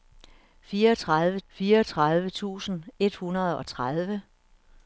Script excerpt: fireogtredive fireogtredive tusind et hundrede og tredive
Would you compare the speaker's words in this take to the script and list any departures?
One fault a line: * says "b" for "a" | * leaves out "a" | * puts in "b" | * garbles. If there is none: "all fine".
all fine